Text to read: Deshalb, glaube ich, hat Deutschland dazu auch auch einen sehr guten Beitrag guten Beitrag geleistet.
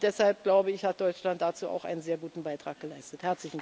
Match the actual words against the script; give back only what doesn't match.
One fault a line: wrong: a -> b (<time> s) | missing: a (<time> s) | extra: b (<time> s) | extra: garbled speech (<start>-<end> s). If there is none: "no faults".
missing: auch (1.8 s)
missing: guten Beitrag (2.8 s)